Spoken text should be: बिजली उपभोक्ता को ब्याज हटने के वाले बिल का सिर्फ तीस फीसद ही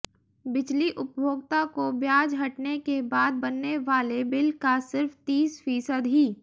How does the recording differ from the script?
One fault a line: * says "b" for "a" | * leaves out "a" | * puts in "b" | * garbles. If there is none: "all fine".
* puts in "बाद बनने"